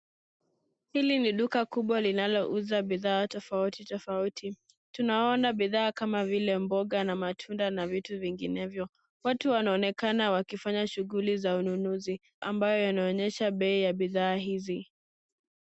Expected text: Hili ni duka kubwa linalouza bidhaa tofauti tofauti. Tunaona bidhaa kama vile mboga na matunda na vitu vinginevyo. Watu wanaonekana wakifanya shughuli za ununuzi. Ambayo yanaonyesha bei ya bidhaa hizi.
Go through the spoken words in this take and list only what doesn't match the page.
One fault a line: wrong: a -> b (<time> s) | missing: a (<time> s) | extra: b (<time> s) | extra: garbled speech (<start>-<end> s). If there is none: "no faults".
no faults